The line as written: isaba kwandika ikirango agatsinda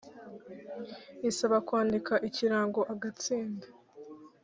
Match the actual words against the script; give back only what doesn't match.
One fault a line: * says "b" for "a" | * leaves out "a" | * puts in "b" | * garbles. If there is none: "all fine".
all fine